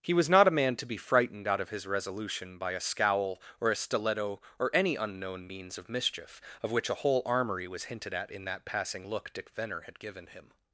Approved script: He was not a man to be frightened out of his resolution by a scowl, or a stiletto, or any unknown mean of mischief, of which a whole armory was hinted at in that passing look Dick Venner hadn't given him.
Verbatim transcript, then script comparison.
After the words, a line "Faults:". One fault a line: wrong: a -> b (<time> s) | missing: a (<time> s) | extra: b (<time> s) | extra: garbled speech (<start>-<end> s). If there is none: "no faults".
He was not a man to be frightened out of his resolution by a scowl, or a stiletto, or any unknown means of mischief, of which a whole armory was hinted at in that passing look Dick Venner had given him.
Faults:
wrong: mean -> means (5.5 s)
wrong: hadn't -> had (9.8 s)